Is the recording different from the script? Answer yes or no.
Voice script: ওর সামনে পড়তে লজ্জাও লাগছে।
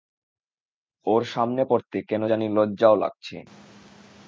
yes